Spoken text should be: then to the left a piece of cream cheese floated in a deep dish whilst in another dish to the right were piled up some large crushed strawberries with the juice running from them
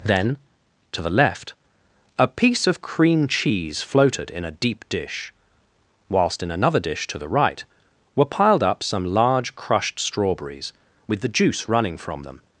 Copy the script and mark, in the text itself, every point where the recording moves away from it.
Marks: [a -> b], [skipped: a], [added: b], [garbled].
then to the left a piece of cream cheese floated in a deep dish whilst in another dish to the right were piled up some large crushed strawberries with the juice running from them